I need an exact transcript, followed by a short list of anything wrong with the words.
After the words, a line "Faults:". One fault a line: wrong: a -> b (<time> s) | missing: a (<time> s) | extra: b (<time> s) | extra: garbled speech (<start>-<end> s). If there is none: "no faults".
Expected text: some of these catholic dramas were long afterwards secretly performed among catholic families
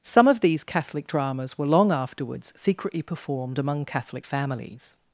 some of these catholic dramas were long afterwards secretly performed among catholic families
Faults:
no faults